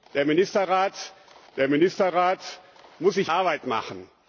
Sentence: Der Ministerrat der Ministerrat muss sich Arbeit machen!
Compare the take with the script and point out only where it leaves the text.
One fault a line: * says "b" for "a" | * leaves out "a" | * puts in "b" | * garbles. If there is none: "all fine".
all fine